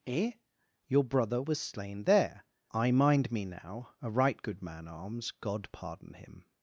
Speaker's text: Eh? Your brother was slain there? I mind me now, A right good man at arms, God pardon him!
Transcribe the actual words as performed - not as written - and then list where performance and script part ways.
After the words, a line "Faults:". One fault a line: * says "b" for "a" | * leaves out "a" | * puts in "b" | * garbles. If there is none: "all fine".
Eh? Your brother was slain there? I mind me now, A right good man arms, God pardon him!
Faults:
* leaves out "at"